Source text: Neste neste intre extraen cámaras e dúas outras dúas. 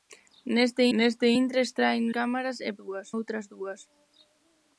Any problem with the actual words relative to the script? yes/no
no